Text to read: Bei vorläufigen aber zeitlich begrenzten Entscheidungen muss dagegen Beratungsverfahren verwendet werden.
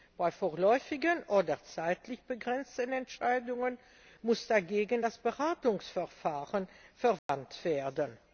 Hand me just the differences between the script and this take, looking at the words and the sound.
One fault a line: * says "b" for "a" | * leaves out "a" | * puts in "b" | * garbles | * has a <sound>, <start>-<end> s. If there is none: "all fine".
* says "oder" for "aber"
* puts in "das"
* has a dropout, 7.2-7.3 s